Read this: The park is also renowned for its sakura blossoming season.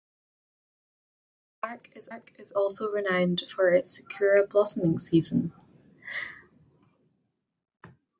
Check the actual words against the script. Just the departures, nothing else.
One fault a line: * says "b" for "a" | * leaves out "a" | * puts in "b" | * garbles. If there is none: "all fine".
* puts in "park is"